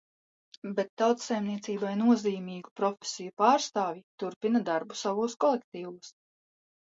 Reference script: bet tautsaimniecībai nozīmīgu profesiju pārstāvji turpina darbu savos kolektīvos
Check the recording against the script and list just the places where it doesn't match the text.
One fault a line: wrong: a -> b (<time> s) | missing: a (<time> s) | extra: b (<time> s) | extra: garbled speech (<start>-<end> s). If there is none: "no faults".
no faults